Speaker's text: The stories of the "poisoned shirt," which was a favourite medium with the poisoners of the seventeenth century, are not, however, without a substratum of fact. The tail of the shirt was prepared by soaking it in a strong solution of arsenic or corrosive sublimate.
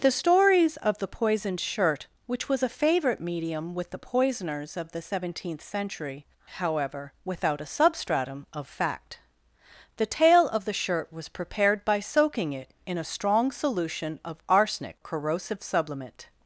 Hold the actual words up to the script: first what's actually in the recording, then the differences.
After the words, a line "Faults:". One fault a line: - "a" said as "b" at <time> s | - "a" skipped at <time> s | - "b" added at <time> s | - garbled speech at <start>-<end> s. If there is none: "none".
The stories of the "poisoned shirt," which was a favourite medium with the poisoners of the seventeenth century, however, without a substratum of fact. The tail of the shirt was prepared by soaking it in a strong solution of arsenic corrosive sublimate.
Faults:
- "are not" skipped at 6.2 s
- "or" skipped at 15.0 s